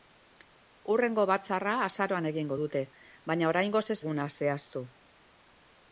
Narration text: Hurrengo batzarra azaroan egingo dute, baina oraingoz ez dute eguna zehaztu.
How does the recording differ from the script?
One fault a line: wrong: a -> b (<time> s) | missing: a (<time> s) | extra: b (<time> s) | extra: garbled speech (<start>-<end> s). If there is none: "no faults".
missing: dute (4.0 s)